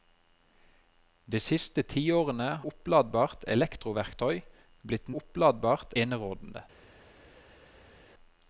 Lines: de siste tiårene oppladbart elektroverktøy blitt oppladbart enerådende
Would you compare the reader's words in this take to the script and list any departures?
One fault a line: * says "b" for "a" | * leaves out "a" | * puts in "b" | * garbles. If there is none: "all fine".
all fine